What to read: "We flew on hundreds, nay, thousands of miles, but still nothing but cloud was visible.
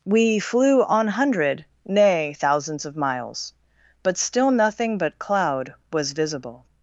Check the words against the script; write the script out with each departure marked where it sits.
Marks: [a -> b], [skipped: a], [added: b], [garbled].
"We flew on [hundreds, -> hundred] nay, thousands of miles, but still nothing but cloud was visible.